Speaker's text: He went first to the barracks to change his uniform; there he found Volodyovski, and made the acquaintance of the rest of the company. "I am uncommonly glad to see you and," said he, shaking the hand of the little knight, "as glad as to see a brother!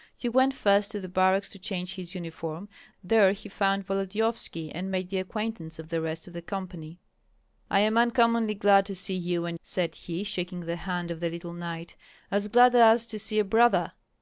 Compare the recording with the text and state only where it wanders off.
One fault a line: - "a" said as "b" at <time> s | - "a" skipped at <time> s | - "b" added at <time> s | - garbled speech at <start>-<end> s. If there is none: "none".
none